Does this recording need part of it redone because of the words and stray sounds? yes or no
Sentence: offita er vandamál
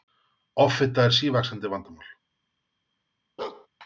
yes